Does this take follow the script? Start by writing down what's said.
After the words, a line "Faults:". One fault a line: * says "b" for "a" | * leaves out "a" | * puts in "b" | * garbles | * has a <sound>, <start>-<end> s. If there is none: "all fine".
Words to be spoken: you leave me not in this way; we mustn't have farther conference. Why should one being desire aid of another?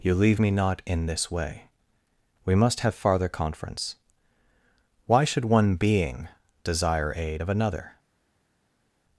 you leave me not in this way; we must have farther conference. Why should one being desire aid of another?
Faults:
* says "must" for "mustn't"